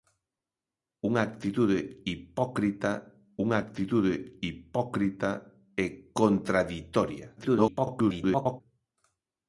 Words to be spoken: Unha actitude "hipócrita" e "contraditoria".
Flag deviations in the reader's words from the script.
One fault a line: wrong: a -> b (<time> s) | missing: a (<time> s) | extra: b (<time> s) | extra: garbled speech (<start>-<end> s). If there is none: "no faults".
extra: unha actitude hipócrita (3.4 s)
extra: garbled speech (7.4-8.6 s)